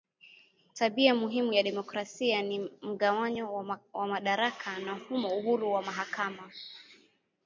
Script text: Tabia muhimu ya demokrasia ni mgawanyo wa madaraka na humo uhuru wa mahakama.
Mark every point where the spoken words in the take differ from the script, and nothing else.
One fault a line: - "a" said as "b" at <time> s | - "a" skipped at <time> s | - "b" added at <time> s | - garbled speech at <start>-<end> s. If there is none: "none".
none